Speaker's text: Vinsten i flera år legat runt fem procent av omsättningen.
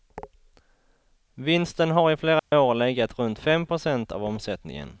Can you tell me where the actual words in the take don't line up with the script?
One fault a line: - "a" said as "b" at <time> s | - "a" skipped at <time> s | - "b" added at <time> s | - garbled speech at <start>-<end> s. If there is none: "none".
- "har" added at 1.9 s